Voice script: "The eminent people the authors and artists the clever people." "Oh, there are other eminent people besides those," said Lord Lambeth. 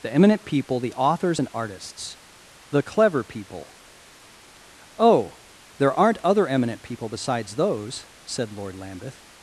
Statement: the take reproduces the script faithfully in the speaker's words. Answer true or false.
false